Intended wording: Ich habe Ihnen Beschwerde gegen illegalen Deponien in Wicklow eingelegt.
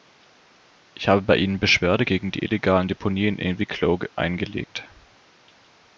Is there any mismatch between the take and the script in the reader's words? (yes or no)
yes